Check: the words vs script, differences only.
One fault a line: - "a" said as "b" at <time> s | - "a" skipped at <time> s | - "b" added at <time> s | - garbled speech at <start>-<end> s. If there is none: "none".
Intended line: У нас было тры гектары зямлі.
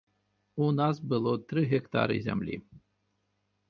none